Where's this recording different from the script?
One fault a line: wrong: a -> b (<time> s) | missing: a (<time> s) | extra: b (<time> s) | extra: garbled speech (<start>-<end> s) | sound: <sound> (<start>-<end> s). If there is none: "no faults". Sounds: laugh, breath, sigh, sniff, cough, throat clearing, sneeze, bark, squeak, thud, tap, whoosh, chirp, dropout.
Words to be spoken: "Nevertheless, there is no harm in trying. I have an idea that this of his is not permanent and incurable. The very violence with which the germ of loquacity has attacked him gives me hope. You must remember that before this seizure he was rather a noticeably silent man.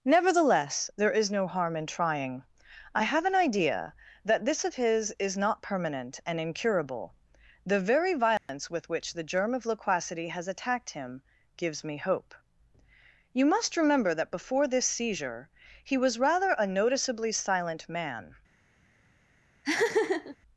sound: dropout (8.4-8.5 s)
sound: laugh (19.6-20.4 s)